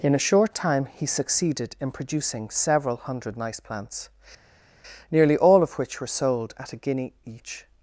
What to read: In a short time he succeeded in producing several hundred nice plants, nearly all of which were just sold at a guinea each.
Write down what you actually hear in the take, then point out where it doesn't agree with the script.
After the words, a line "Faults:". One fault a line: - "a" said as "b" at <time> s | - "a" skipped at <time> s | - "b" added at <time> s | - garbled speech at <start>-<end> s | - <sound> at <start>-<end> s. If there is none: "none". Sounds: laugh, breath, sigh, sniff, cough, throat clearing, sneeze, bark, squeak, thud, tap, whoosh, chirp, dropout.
In a short time he succeeded in producing several hundred nice plants, nearly all of which were sold at a guinea each.
Faults:
- "just" skipped at 6.1 s